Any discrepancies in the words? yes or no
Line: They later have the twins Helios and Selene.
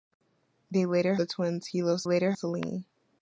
yes